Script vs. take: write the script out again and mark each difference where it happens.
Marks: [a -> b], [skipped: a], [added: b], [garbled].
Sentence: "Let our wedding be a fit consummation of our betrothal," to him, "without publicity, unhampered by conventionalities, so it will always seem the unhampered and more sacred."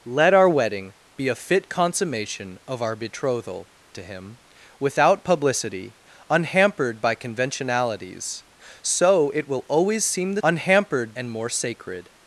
"Let our wedding be a fit consummation of our betrothal," to him, "without publicity, unhampered by conventionalities, so it will always seem the unhampered and more sacred."